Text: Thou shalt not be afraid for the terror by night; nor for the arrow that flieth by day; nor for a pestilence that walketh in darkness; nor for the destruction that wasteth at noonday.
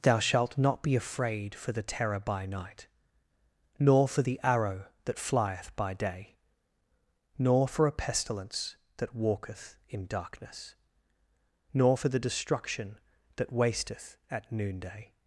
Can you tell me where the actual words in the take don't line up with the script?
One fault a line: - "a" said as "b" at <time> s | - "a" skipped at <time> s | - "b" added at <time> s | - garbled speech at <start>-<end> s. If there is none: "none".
none